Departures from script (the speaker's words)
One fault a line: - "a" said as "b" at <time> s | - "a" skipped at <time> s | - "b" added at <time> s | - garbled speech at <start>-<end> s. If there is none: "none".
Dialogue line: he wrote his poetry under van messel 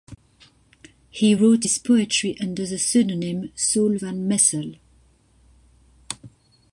- "the pseudonym saul" added at 2.7 s